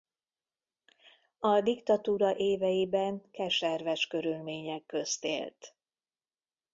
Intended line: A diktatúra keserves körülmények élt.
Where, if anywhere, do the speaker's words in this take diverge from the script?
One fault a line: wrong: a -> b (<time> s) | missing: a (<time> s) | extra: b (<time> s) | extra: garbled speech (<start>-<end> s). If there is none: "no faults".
extra: éveiben (2.4 s)
extra: közt (4.9 s)